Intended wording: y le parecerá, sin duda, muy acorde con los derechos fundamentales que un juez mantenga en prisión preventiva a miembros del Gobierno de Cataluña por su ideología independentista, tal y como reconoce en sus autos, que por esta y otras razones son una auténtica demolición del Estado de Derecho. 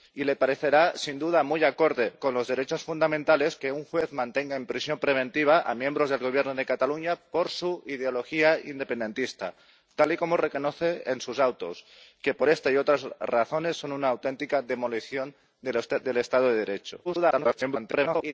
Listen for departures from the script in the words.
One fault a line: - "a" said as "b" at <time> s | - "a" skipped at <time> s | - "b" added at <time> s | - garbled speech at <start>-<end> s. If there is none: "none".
- garbled speech at 17.0-18.3 s